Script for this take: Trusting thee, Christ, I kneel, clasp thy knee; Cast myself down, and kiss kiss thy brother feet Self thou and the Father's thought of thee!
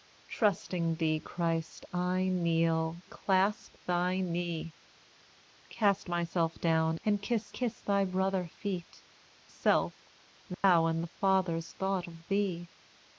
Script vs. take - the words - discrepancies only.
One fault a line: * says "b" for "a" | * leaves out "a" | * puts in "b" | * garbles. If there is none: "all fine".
all fine